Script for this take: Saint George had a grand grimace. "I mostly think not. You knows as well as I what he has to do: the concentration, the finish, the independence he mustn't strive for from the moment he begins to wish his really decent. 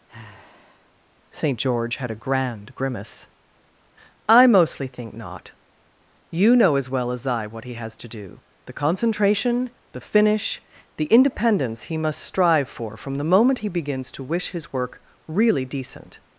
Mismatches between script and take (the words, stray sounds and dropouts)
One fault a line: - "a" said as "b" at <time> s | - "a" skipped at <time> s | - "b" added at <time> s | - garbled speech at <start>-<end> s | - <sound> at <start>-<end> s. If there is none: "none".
- sigh at 0.1-0.9 s
- "knows" said as "know" at 6.5 s
- "mustn't" said as "must" at 12.0 s
- "work" added at 14.7 s